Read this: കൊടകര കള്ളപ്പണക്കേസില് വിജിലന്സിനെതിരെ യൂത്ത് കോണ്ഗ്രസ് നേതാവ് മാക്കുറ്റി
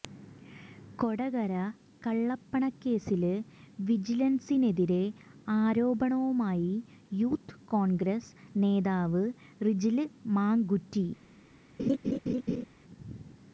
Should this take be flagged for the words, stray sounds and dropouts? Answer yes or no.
yes